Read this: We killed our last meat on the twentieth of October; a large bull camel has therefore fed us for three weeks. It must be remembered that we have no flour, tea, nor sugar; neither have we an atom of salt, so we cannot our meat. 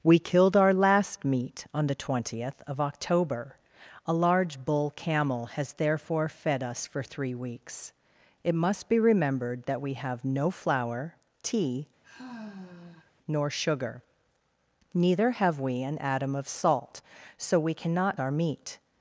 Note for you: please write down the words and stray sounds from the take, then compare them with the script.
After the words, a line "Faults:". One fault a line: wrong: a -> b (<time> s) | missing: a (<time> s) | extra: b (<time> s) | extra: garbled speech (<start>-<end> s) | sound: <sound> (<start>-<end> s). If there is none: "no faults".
We killed our last meat on the twentieth of October; a large bull camel has therefore fed us for three weeks. It must be remembered that we have no flour, tea, nor sugar; neither have we an atom of salt, so we cannot our meat.
Faults:
sound: sigh (12.0-13.1 s)